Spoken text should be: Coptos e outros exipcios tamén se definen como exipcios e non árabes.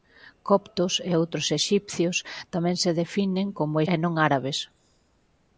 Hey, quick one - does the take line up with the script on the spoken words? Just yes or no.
no